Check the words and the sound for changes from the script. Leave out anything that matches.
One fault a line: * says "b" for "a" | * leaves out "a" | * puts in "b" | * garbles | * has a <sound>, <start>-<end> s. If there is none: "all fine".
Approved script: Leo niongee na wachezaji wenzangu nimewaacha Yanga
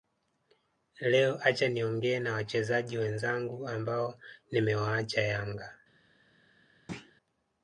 * puts in "acha"
* puts in "ambao"
* has a thud, 6.9-7.1 s